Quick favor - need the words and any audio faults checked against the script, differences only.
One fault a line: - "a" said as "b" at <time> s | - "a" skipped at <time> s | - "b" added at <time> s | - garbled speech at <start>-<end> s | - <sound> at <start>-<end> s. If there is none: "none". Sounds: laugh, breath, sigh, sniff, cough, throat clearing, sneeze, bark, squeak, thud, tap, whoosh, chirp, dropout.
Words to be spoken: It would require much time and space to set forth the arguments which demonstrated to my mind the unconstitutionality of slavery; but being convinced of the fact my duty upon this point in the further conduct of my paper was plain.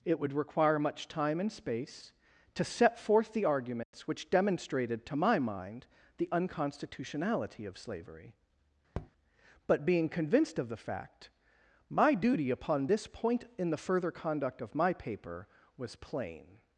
- dropout at 3.8-3.9 s
- tap at 8.9-9.1 s